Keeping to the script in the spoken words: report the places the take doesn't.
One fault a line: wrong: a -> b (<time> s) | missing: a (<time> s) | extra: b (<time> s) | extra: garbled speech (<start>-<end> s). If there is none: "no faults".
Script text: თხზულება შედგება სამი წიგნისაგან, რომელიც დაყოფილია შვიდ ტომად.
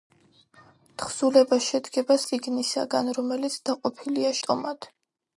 missing: სამი (2.2 s)
missing: შვიდ (4.3 s)